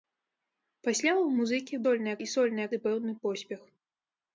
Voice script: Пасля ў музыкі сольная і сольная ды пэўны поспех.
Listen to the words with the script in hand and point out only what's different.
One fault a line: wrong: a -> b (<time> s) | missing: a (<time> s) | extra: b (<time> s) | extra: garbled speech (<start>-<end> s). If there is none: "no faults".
no faults